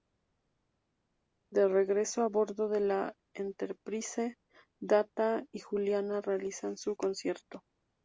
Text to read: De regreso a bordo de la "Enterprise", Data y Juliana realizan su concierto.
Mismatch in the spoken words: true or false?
false